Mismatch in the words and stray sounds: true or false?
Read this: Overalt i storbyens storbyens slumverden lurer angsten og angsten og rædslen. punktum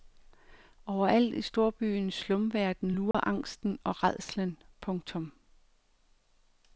true